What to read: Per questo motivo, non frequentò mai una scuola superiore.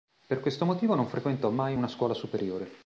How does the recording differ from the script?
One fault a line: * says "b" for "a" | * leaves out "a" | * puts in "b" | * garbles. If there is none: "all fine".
all fine